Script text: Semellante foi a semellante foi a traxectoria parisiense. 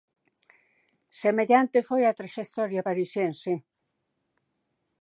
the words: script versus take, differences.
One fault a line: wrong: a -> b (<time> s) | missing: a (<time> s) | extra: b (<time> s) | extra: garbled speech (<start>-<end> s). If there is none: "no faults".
missing: semellante foi a (2.2 s)